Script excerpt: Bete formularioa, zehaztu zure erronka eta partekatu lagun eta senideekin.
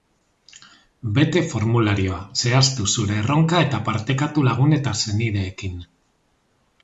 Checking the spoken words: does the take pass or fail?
pass